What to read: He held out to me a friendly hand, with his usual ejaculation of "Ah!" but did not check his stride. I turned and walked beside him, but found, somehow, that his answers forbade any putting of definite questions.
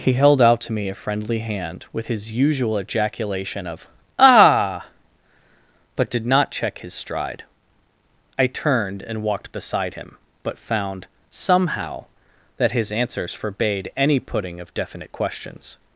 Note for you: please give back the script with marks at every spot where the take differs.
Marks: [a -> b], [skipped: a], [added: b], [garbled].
He held out to me a friendly hand, with his usual ejaculation of "Ah!" but did not check his stride. I turned and walked beside him, but found, somehow, that his answers forbade any putting of definite questions.